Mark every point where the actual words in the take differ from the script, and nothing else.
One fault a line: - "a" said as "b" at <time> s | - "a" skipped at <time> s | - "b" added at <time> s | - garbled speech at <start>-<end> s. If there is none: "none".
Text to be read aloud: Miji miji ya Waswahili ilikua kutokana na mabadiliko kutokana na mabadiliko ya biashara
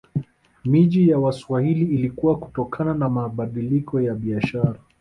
- "miji" skipped at 1.1 s
- "kutokana na mabadiliko" skipped at 4.0 s